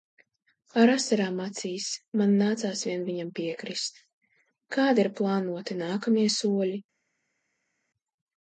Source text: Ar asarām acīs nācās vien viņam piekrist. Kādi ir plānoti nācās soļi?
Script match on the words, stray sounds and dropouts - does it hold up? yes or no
no